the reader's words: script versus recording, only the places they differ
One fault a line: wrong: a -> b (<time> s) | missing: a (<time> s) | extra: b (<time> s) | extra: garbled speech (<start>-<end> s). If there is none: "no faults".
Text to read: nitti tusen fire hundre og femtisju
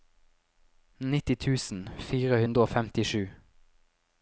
no faults